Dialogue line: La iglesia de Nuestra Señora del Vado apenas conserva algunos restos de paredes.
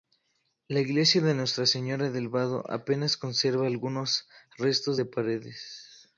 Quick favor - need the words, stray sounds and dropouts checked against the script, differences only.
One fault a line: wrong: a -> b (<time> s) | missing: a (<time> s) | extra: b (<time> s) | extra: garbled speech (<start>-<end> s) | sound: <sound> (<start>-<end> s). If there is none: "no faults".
no faults